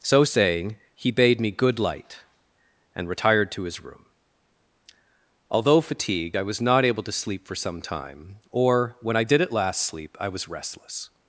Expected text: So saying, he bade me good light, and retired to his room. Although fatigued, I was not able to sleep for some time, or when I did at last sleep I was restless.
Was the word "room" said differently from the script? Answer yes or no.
no